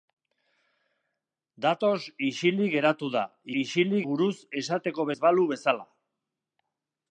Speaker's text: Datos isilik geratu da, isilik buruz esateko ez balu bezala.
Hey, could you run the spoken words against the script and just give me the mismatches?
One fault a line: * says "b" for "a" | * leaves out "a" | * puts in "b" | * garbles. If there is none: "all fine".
all fine